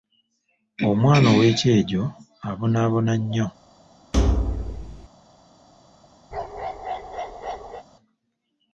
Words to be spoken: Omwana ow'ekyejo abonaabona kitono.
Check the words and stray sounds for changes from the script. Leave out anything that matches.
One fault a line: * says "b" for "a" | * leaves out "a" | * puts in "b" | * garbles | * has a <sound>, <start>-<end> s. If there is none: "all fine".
* says "nnyo" for "kitono"
* has a thud, 4.1-5.1 s
* has a bark, 6.3-7.8 s